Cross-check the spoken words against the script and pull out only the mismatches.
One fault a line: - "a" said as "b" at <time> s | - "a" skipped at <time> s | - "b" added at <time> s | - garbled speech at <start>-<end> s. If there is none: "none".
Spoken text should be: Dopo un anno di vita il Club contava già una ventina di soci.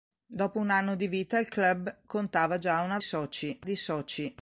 - "ventina" said as "soci" at 3.0 s